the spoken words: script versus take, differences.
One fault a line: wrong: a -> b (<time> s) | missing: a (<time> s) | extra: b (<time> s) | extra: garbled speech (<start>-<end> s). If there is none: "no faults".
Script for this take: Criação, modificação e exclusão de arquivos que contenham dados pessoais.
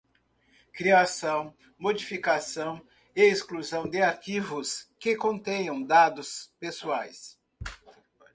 no faults